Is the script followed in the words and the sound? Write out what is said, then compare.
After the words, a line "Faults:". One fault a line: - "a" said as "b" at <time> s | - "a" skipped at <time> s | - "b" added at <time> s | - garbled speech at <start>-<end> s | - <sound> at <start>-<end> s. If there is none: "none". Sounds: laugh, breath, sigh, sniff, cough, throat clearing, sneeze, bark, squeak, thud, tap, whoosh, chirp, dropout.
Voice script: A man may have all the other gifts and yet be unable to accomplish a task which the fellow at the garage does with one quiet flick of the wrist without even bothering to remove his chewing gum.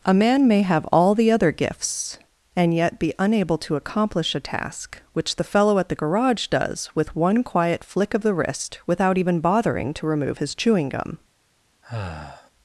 A man may have all the other gifts and yet be unable to accomplish a task which the fellow at the garage does with one quiet flick of the wrist without even bothering to remove his chewing gum.
Faults:
- sigh at 11.8-12.5 s